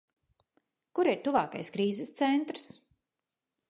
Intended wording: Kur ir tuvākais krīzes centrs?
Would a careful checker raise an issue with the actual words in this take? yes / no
no